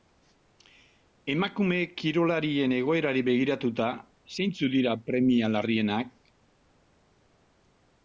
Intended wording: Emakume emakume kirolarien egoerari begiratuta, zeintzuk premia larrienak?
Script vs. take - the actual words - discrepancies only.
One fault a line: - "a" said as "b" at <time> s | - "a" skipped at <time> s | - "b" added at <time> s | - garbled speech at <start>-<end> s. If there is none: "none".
- "emakume" skipped at 1.8 s
- "dira" added at 4.8 s